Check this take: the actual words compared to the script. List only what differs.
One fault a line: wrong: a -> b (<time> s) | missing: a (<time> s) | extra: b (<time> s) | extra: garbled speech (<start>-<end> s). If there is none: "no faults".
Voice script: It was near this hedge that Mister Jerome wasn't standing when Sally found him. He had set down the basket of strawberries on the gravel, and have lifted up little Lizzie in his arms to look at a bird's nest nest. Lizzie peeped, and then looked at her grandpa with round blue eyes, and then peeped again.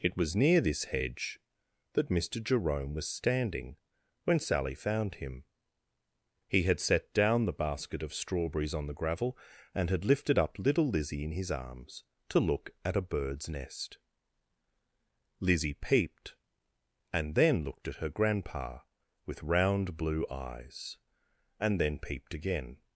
wrong: wasn't -> was (3.0 s)
wrong: have -> had (9.9 s)
missing: nest (14.0 s)